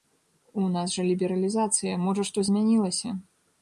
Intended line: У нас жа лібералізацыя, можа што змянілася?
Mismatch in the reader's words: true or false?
false